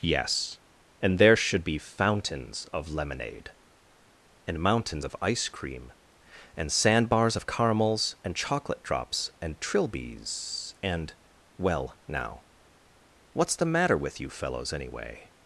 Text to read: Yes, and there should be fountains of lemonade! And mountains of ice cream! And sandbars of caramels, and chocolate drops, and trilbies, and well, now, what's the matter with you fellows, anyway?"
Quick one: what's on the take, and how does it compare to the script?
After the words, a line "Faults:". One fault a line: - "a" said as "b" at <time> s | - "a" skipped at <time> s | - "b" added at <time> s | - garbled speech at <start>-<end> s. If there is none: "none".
Yes, and there should be fountains of lemonade! And mountains of ice cream! And sandbars of caramels, and chocolate drops, and trilbies, and well, now, what's the matter with you fellows, anyway?"
Faults:
none